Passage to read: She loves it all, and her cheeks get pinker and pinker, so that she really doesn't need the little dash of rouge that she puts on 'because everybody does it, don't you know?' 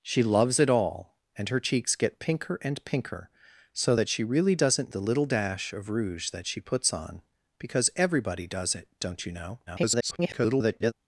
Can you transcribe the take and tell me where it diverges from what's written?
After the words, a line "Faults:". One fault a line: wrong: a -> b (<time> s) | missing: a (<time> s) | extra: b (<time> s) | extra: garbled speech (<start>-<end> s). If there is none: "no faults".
She loves it all, and her cheeks get pinker and pinker, so that she really doesn't the little dash of rouge that she puts on 'because everybody does it, don't you know?' [garbled]
Faults:
missing: need (4.9 s)
extra: garbled speech (9.7-10.9 s)